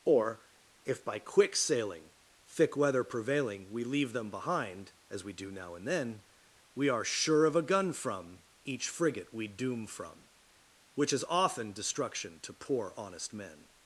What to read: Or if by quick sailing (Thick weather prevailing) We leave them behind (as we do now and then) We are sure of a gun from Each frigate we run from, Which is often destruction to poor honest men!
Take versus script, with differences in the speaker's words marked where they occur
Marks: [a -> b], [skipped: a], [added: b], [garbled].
Or if by quick sailing (Thick weather prevailing) We leave them behind (as we do now and then) We are sure of a gun from Each frigate we [run -> doom] from, Which is often destruction to poor honest men!